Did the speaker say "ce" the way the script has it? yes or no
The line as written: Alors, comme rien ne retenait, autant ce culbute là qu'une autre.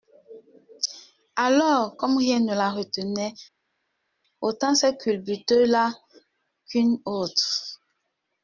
no